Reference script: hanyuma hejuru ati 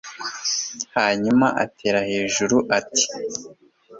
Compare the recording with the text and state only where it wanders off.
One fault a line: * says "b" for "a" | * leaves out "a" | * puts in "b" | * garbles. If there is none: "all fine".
* puts in "atera"